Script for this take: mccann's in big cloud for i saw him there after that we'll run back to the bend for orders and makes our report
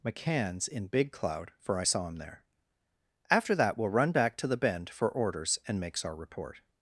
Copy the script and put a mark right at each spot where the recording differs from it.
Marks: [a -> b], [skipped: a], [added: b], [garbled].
mccann's in big cloud for i saw him there after that we'll run back to the bend for orders and makes our report